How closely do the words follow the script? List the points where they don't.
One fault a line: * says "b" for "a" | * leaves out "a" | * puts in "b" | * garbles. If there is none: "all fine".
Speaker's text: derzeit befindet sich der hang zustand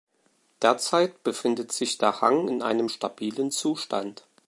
* puts in "in einem stabilen"